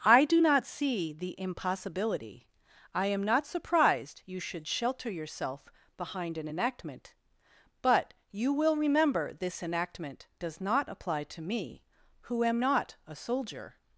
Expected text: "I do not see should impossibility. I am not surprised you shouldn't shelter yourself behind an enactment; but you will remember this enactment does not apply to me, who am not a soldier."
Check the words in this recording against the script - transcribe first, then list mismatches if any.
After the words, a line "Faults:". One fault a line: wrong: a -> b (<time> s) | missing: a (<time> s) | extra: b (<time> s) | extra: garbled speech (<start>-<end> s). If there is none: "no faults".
"I do not see the impossibility. I am not surprised you should shelter yourself behind an enactment; but you will remember this enactment does not apply to me, who am not a soldier."
Faults:
wrong: should -> the (1.1 s)
wrong: shouldn't -> should (4.4 s)